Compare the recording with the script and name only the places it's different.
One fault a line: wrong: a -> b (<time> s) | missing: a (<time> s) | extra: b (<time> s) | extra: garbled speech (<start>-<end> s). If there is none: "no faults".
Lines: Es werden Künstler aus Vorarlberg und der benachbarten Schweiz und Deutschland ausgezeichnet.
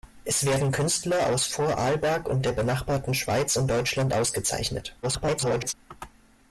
extra: garbled speech (5.0-5.7 s)